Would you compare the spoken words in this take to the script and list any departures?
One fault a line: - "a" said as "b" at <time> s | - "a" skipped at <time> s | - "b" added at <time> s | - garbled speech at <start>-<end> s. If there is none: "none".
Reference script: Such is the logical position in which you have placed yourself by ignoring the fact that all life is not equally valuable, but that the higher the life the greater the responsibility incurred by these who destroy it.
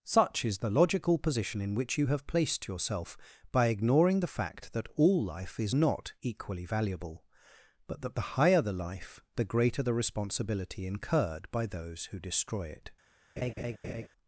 - "these" said as "those" at 11.6 s